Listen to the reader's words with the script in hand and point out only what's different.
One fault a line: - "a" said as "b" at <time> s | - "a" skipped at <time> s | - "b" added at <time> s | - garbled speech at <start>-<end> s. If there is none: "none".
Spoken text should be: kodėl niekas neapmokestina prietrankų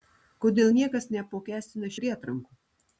none